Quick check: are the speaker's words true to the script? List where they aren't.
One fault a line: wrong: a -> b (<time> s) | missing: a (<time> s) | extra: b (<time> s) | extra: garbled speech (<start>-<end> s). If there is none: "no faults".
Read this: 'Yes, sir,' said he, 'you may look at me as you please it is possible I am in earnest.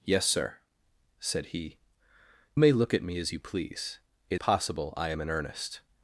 missing: you (1.8 s)
missing: is (4.4 s)